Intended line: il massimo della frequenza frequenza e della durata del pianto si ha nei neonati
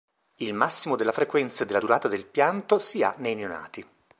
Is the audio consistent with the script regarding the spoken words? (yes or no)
no